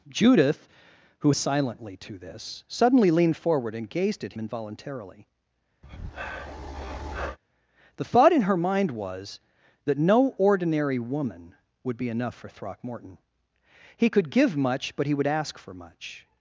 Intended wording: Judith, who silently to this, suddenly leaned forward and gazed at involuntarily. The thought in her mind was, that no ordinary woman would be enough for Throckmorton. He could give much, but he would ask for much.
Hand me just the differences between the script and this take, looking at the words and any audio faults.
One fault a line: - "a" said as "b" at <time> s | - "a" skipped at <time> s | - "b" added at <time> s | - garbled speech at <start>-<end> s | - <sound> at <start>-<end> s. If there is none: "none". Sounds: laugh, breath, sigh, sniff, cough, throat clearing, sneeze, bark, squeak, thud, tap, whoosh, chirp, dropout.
- breath at 5.8-7.4 s